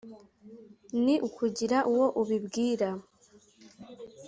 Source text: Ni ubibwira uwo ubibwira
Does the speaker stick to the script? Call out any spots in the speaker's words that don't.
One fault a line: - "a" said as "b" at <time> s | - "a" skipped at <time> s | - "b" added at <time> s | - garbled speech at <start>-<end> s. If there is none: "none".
- "ubibwira" said as "ukugira" at 1.3 s